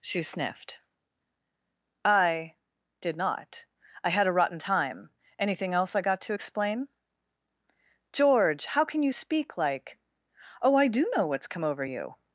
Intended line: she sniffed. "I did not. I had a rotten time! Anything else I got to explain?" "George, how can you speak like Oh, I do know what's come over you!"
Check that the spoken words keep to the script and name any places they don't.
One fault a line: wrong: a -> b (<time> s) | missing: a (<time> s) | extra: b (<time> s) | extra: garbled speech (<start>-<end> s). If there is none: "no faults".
no faults